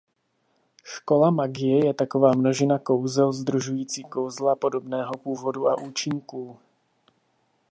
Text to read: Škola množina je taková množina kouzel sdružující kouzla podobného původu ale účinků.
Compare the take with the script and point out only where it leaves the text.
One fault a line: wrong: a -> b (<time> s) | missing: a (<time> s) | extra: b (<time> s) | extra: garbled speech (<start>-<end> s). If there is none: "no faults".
wrong: množina -> magie (1.3 s)
wrong: ale -> a (5.7 s)